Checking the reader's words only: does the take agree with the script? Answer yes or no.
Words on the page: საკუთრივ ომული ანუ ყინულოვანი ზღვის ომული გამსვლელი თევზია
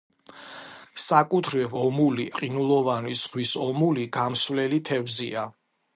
no